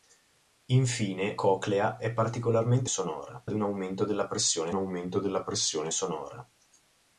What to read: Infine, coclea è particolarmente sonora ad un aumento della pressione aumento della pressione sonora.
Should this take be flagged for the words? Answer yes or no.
no